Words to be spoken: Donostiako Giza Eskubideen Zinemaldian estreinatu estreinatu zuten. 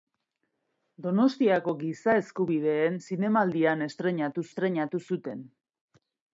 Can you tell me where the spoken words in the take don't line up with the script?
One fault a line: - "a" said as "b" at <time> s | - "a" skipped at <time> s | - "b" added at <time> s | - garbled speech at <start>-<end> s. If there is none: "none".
none